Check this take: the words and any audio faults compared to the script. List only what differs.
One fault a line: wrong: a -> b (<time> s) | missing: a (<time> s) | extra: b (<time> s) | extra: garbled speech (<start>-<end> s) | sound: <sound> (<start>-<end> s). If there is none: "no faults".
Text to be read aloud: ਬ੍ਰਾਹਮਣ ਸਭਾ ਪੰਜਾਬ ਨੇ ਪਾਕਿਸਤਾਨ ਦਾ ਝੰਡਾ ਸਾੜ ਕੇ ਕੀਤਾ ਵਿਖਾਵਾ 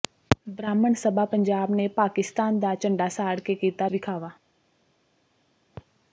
no faults